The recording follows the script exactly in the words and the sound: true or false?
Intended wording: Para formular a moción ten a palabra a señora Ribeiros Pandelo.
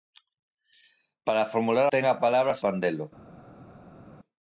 false